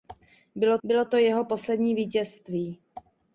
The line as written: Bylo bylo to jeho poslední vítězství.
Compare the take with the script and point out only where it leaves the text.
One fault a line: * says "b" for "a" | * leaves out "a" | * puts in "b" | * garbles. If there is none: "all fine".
all fine